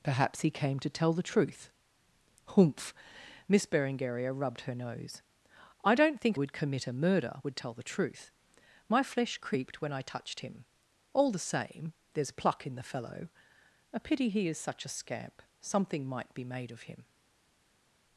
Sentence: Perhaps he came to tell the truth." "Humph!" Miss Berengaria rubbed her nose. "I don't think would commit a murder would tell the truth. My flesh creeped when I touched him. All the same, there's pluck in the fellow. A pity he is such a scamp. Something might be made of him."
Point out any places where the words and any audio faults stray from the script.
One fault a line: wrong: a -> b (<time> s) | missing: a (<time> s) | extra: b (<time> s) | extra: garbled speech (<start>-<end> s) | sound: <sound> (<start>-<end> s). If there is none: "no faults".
no faults